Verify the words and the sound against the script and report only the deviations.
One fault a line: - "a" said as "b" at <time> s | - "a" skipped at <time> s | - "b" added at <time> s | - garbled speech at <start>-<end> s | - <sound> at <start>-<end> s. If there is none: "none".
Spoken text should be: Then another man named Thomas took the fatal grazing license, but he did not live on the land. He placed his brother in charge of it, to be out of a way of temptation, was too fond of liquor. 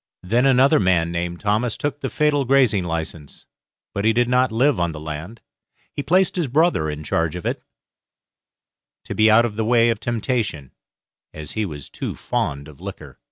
- "a" said as "the" at 9.6 s
- "as he" added at 11.3 s